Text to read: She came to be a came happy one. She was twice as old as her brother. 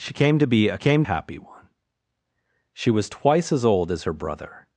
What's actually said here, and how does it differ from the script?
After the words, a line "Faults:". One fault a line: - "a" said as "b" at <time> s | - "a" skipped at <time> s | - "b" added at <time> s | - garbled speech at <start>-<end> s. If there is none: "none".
She came to be a came happy one. She was twice as old as her brother.
Faults:
none